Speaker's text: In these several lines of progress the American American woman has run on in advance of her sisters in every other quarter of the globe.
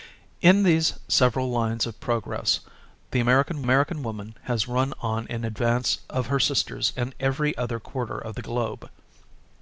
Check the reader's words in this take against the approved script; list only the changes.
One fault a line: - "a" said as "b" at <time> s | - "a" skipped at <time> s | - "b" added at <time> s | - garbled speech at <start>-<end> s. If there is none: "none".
none